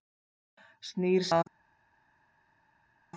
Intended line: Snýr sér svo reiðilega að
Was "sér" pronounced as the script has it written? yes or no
no